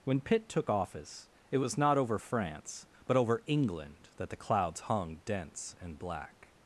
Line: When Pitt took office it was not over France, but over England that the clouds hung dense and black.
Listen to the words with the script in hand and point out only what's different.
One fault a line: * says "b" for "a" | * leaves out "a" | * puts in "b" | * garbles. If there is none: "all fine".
all fine